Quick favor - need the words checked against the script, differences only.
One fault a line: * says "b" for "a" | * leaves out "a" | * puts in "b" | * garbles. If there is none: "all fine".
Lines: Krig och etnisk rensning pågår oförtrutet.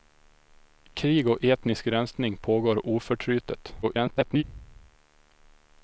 * garbles